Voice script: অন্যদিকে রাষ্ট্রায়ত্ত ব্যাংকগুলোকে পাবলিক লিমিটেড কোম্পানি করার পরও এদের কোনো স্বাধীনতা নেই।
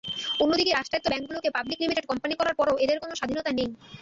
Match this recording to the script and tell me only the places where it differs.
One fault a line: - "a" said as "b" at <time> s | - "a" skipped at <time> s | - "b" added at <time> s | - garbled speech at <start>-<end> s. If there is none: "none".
none